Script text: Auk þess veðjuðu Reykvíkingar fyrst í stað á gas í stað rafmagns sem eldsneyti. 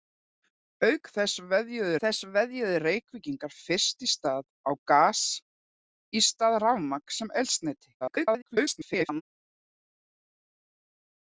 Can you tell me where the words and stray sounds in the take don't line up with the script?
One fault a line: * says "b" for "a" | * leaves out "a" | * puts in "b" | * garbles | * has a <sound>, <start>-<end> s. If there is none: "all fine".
* puts in "þess veðjuðu"
* garbles